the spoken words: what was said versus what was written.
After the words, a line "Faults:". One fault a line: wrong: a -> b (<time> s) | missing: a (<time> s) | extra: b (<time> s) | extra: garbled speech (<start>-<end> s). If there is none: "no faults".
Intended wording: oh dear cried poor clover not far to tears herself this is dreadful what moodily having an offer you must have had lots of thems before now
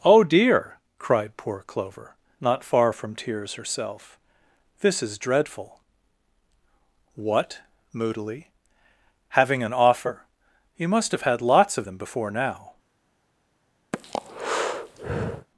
oh dear cried poor clover not far from tears herself this is dreadful what moodily having an offer you must have had lots of them before now
Faults:
wrong: to -> from (2.9 s)
wrong: thems -> them (11.8 s)